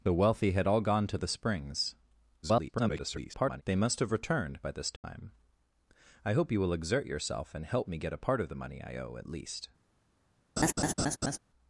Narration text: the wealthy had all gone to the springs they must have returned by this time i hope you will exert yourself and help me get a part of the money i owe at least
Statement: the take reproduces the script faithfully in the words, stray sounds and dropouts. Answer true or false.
false